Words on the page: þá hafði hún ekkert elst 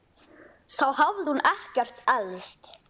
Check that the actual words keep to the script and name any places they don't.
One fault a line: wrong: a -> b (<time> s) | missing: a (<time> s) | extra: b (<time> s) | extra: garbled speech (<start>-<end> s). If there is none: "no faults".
no faults